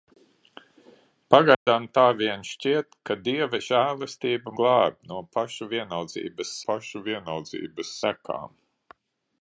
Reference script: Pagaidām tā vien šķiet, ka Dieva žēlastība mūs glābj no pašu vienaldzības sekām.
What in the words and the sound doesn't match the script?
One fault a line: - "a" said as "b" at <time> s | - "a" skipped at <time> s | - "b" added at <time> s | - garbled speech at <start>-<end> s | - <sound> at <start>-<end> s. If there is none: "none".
- dropout at 1.5-1.7 s
- "mūs" skipped at 4.5 s
- "pašu vienaldzības" added at 6.7 s